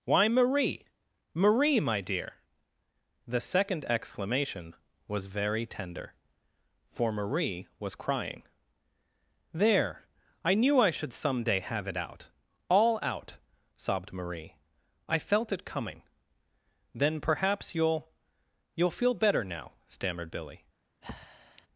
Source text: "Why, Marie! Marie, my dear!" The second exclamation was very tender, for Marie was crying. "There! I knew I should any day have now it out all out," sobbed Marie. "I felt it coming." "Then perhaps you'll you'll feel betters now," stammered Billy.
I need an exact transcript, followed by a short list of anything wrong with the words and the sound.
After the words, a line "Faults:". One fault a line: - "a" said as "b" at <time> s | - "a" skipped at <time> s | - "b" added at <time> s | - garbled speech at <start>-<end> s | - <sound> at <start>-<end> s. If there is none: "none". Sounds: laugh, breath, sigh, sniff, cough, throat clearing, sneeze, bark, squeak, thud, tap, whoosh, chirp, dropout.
"Why, Marie! Marie, my dear!" The second exclamation was very tender, for Marie was crying. "There! I knew I should some day have it out all out," sobbed Marie. "I felt it coming." "Then perhaps you'll you'll feel better now," stammered Billy.
Faults:
- "any" said as "some" at 11.1 s
- "now" skipped at 11.9 s
- "betters" said as "better" at 19.1 s
- breath at 21.0-21.7 s